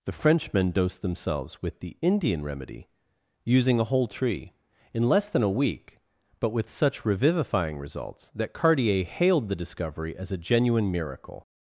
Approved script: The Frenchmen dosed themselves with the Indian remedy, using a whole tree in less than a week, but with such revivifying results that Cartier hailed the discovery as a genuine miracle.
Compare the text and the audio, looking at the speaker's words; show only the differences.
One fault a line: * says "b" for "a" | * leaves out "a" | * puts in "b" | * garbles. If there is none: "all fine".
all fine